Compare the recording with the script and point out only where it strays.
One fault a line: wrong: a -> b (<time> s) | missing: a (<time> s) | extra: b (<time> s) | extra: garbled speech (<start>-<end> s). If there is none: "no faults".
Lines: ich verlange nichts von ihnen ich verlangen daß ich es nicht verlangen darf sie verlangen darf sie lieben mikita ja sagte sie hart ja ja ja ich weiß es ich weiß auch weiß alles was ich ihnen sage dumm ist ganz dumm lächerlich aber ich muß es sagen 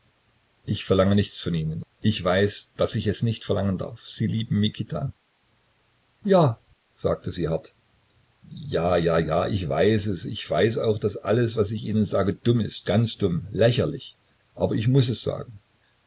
wrong: verlangen -> weiß (2.2 s)
missing: verlangen darf sie (4.3 s)
wrong: weiß -> daß (11.0 s)